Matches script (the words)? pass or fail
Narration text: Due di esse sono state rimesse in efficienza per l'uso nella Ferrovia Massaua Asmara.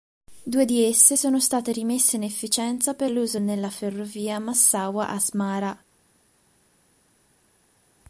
pass